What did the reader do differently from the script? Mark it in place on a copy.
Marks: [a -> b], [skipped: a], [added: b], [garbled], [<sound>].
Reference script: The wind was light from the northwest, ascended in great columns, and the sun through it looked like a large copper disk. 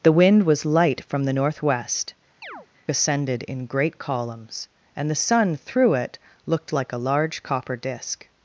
The wind was light from the northwest, [chirp] ascended in great columns, and the sun through it looked like a large copper disk.